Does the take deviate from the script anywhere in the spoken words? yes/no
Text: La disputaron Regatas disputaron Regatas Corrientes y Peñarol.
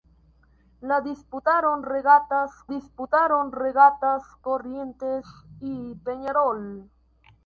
no